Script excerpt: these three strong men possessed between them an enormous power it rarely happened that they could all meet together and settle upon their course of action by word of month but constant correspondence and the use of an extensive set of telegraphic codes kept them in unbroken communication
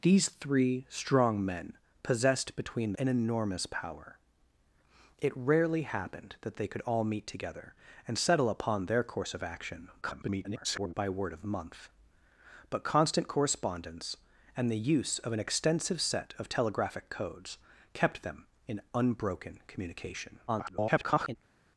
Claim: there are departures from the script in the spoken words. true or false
true